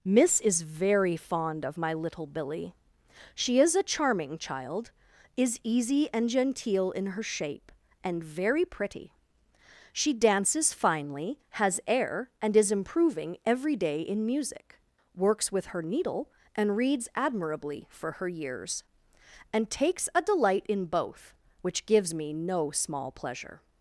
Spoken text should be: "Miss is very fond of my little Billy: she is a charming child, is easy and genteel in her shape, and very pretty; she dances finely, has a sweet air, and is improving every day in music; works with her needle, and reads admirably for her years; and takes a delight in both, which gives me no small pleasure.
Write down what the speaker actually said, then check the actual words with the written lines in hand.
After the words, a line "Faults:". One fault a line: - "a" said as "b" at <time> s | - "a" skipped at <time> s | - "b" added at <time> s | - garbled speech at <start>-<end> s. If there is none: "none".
"Miss is very fond of my little Billy: she is a charming child, is easy and genteel in her shape, and very pretty; she dances finely, has air, and is improving every day in music; works with her needle, and reads admirably for her years; and takes a delight in both, which gives me no small pleasure.
Faults:
- "a sweet" skipped at 11.8 s